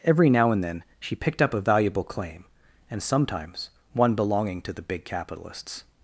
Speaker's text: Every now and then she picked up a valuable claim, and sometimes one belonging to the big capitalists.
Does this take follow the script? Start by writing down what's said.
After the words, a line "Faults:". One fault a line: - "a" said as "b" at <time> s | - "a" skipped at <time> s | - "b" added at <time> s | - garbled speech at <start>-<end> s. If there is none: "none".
Every now and then she picked up a valuable claim, and sometimes one belonging to the big capitalists.
Faults:
none